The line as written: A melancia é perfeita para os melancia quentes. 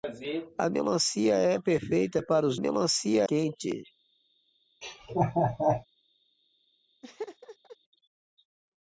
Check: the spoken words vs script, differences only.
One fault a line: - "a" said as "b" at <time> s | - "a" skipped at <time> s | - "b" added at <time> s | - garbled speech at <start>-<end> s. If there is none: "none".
none